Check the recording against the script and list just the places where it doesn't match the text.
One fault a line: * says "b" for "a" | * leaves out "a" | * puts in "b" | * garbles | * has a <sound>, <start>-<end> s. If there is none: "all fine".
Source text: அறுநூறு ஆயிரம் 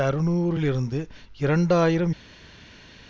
* puts in "லிருந்து இரண்டு"